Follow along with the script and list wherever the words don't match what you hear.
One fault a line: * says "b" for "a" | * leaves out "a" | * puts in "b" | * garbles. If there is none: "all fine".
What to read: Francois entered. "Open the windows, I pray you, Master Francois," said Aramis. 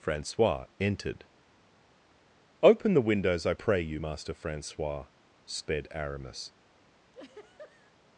* says "sped" for "said"